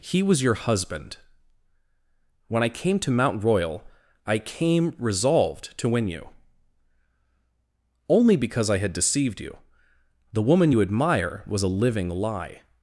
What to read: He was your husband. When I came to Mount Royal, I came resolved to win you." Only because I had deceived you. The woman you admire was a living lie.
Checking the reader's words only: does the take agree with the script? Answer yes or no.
yes